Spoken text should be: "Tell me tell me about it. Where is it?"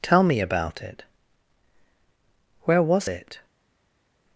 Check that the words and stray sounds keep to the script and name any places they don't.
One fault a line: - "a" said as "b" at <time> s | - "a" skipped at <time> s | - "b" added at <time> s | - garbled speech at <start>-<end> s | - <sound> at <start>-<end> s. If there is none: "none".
- "tell me" skipped at 0.4 s
- "is" said as "was" at 2.8 s